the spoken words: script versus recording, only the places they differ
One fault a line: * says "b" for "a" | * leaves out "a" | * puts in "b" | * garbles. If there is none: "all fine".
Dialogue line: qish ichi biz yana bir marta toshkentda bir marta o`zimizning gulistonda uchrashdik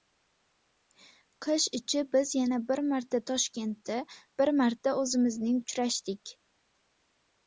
* leaves out "gulistonda"